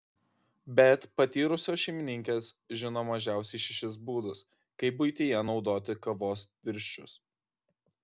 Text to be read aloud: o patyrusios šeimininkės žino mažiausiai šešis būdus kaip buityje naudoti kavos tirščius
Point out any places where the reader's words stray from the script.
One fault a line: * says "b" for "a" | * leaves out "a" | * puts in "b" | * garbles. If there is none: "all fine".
* says "bet" for "o"